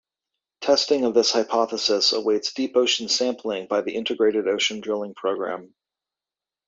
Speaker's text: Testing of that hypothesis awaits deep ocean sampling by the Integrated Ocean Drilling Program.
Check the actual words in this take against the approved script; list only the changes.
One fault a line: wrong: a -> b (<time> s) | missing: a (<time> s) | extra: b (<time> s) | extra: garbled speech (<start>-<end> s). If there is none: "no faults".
wrong: that -> this (1.1 s)